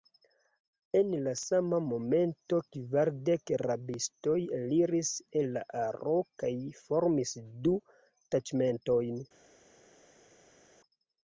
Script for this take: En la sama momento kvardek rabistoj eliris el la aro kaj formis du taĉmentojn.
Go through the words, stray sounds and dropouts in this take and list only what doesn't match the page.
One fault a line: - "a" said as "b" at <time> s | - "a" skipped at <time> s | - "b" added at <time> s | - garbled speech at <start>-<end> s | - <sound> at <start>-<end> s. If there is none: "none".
none